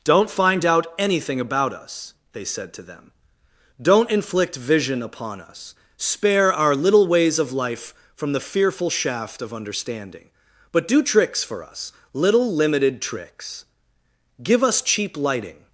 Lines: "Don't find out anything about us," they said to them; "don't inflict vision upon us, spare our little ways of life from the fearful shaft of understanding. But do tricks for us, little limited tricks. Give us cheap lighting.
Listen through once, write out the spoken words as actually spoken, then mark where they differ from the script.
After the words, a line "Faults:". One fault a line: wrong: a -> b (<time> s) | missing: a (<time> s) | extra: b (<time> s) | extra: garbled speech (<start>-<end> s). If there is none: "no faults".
"Don't find out anything about us," they said to them; "don't inflict vision upon us, spare our little ways of life from the fearful shaft of understanding. But do tricks for us, little limited tricks. Give us cheap lighting.
Faults:
no faults